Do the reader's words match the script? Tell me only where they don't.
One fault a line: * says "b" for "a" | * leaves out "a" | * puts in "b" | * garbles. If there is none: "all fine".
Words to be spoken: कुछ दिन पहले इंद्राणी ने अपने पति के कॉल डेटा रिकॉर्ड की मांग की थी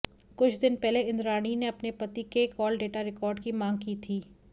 all fine